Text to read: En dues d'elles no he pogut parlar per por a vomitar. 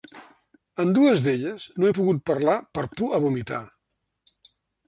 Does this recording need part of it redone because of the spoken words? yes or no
no